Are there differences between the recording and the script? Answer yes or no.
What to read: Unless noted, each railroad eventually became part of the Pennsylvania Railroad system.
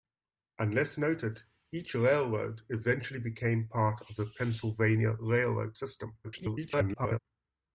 yes